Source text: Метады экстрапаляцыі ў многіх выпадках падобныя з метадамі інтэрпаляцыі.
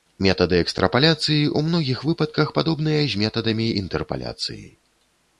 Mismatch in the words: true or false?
false